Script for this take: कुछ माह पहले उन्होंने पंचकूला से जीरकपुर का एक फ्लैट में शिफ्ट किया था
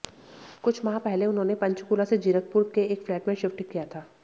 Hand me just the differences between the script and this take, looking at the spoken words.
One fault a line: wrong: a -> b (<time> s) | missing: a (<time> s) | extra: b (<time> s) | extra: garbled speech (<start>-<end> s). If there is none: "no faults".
wrong: का -> के (2.8 s)